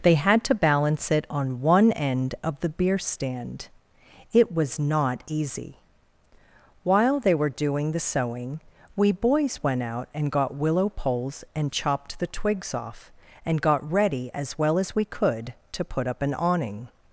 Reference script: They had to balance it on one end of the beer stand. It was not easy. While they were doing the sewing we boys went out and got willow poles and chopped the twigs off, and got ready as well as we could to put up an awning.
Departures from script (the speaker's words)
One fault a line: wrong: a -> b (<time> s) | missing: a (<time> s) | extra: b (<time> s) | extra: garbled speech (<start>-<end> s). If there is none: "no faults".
no faults